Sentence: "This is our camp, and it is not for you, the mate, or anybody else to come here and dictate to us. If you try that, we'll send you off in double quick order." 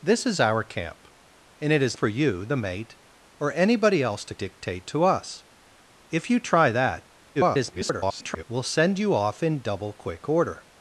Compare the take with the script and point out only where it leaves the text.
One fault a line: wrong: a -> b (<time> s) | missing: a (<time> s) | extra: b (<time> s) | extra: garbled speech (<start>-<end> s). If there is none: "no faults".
missing: not (2.0 s)
missing: come here and (4.3 s)
extra: garbled speech (7.3-8.4 s)